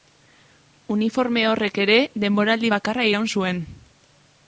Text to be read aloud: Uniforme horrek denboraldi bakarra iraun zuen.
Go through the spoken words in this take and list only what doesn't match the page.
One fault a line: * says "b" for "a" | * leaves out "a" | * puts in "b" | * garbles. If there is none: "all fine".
* puts in "ere"